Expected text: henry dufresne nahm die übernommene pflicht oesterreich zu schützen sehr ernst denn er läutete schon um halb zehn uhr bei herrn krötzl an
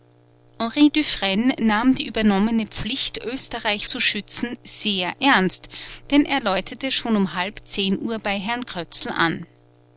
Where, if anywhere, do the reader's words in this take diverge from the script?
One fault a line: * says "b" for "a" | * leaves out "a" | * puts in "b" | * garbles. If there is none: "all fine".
all fine